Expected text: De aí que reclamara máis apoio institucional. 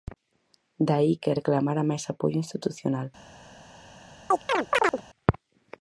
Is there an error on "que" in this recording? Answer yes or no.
no